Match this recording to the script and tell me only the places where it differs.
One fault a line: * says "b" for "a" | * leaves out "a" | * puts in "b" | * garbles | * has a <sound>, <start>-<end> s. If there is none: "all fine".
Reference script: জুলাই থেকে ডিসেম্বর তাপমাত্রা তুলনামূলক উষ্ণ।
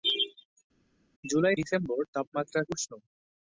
* leaves out "থেকে"
* leaves out "তুলনামূলক"